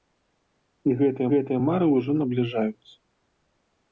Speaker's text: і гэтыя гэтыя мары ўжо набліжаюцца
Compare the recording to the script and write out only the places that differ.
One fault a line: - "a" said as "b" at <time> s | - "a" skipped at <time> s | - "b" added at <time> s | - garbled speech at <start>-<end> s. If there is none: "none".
none